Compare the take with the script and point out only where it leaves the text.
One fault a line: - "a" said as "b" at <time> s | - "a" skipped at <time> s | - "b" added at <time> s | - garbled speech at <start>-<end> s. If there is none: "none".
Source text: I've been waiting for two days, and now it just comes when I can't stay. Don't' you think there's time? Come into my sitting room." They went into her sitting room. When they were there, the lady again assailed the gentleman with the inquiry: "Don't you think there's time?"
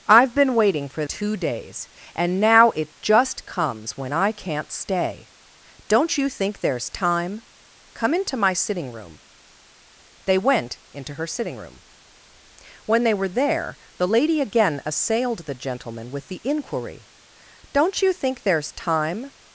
none